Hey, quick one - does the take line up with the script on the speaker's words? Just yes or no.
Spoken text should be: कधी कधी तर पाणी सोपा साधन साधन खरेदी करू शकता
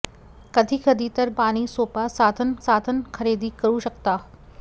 yes